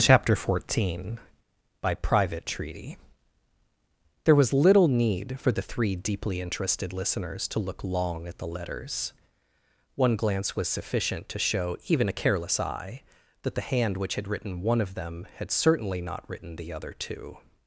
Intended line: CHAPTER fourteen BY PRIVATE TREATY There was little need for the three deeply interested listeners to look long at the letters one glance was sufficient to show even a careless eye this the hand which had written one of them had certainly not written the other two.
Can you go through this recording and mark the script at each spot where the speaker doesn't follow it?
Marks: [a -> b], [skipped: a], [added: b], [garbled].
CHAPTER fourteen BY PRIVATE TREATY There was little need for the three deeply interested listeners to look long at the letters one glance was sufficient to show even a careless eye [this -> that] the hand which had written one of them had certainly not written the other two.